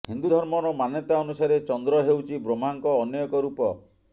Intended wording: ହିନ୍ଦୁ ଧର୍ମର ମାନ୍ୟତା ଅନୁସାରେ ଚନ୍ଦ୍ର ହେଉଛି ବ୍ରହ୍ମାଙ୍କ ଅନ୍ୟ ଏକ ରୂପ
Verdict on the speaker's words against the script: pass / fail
pass